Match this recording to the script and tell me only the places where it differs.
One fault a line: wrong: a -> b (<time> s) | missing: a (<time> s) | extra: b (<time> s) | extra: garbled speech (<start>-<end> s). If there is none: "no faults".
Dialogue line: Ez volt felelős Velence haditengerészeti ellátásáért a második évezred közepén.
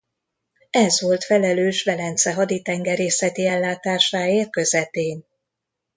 missing: a második évezred (4.6 s)